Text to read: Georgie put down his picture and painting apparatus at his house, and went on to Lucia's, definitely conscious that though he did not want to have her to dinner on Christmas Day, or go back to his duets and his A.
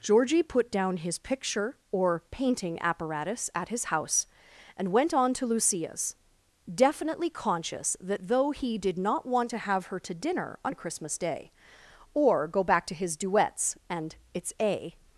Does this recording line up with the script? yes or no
no